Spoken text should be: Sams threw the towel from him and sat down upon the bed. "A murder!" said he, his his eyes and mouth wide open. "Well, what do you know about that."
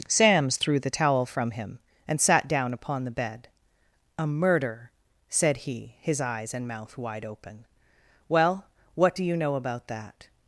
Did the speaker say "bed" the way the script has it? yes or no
yes